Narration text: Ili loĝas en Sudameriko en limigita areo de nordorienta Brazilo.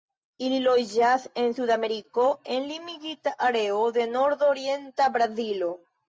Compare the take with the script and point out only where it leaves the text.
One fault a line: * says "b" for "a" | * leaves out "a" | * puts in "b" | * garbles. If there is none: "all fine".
all fine